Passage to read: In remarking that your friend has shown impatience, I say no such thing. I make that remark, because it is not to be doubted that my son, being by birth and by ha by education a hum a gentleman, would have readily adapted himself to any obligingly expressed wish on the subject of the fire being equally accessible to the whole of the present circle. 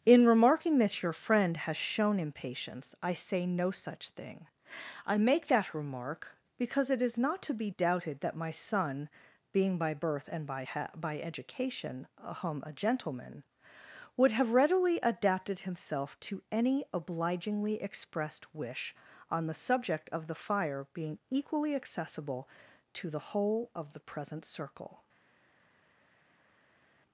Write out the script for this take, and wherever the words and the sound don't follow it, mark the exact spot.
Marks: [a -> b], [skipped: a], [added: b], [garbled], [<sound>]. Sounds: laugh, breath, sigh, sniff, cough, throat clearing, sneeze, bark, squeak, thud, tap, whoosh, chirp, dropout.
In remarking that your friend has shown impatience, I say no such thing. I make that remark, because it is not to be doubted that my son, being by birth and by ha by education a hum a gentleman, would have readily adapted himself to any obligingly expressed wish on the subject of the fire being equally accessible to the whole of the present circle.